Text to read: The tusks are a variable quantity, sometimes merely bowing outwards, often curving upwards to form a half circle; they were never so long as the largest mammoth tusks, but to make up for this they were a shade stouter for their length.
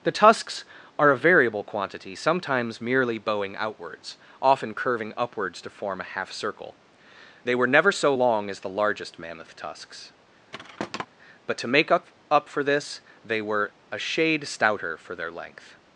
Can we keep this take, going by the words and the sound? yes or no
no